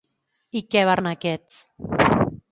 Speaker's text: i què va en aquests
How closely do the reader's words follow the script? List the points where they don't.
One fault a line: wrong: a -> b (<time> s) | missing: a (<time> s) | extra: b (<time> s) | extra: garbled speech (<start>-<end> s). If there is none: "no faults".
no faults